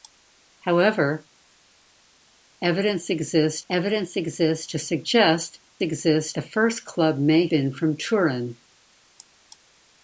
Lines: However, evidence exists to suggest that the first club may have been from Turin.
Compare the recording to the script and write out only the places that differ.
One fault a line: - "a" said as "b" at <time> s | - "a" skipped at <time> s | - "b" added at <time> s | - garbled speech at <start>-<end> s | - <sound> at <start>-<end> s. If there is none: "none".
- "evidence exists" added at 3.7 s
- "that" said as "exists" at 5.8 s
- "have" skipped at 7.5 s